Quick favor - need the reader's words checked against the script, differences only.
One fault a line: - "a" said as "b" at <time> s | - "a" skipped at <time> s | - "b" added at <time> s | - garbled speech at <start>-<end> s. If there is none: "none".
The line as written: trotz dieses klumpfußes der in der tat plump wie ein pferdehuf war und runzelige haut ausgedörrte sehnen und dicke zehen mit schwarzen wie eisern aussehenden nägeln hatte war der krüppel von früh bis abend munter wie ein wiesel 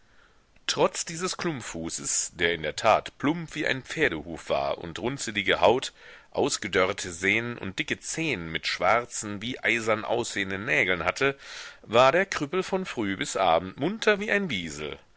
none